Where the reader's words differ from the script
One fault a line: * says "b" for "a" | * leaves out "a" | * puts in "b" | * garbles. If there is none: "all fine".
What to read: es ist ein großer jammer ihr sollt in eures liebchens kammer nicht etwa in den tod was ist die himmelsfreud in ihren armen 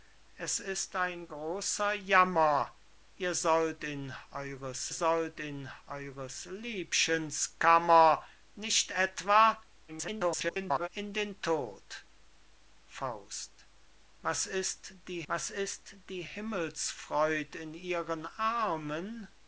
* puts in "sollt in eures"
* garbles
* puts in "was ist die"